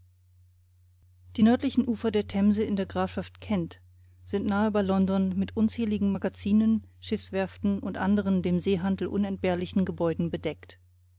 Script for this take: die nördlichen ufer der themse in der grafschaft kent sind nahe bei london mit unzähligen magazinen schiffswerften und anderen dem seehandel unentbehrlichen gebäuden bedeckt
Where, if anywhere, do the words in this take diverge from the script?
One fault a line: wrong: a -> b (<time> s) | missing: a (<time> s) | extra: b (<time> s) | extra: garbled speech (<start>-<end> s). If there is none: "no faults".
no faults